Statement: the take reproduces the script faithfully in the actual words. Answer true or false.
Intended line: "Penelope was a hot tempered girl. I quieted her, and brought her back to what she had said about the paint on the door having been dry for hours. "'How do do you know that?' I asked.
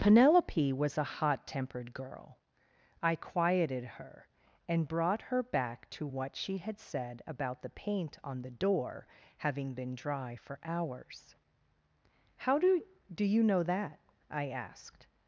true